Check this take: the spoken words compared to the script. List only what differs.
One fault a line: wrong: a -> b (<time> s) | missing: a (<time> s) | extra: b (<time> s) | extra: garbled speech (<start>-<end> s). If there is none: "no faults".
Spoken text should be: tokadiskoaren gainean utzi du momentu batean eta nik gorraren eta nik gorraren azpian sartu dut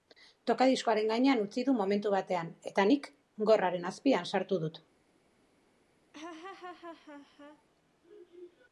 missing: eta nik gorraren (3.9 s)